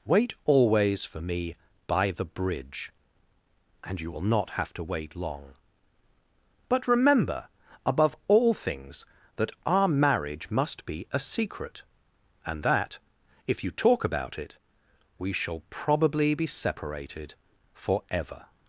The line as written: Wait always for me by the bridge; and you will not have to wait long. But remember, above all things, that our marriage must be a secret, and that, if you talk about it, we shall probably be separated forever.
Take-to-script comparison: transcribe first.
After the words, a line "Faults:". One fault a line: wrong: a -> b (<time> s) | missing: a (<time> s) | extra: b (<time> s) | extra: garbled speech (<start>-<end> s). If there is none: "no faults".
Wait always for me by the bridge; and you will not have to wait long. But remember, above all things, that our marriage must be a secret, and that, if you talk about it, we shall probably be separated forever.
Faults:
no faults